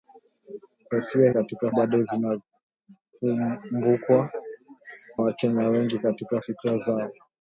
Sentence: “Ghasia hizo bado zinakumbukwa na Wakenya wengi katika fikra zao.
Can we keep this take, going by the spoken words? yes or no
no